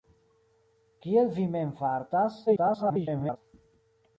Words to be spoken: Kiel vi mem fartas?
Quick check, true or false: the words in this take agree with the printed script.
false